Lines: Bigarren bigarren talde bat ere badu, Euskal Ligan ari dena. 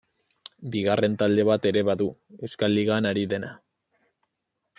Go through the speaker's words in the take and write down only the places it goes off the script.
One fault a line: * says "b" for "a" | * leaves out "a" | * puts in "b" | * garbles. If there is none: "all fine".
* leaves out "bigarren"